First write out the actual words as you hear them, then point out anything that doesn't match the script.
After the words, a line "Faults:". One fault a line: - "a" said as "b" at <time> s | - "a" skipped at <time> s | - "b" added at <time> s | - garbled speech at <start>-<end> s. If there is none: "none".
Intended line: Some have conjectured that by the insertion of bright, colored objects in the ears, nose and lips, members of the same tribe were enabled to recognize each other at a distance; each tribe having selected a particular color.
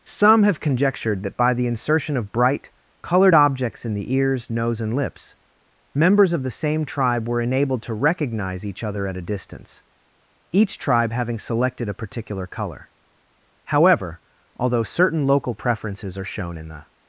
Some have conjectured that by the insertion of bright, colored objects in the ears, nose and lips, members of the same tribe were enabled to recognize each other at a distance; each tribe having selected a particular color. However, although certain local preferences are shown in the
Faults:
- "However although certain local preferences are shown in the" added at 13.7 s